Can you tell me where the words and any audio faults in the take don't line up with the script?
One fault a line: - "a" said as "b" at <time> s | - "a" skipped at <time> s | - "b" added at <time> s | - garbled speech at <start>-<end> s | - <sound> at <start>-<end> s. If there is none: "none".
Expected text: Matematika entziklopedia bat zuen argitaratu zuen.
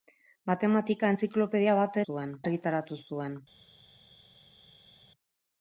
none